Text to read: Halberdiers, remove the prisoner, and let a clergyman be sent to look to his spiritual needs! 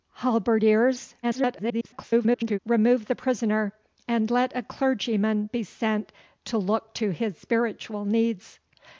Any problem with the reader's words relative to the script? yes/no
yes